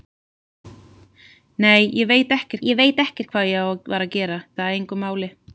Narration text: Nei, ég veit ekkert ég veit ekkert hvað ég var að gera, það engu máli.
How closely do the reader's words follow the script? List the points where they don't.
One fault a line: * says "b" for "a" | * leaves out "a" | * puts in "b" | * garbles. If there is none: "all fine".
all fine